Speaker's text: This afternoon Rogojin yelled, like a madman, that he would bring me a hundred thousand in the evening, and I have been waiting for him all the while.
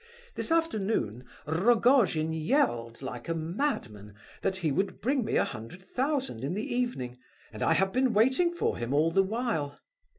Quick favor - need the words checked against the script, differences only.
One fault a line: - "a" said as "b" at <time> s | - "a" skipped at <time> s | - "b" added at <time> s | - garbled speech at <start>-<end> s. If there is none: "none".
none